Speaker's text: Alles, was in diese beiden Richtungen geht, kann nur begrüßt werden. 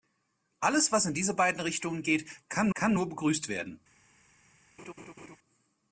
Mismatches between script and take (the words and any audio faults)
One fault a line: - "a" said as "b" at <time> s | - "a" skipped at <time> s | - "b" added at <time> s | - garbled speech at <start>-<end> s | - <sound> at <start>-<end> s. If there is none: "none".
- "kann" added at 2.7 s
- laugh at 4.8-5.4 s